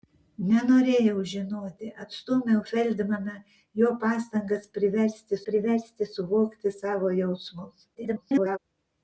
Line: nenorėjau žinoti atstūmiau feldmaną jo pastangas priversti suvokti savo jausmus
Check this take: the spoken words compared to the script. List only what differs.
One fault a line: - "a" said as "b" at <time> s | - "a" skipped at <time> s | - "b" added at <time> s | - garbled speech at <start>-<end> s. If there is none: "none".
- "priversti" added at 5.5 s
- garbled speech at 7.9-8.6 s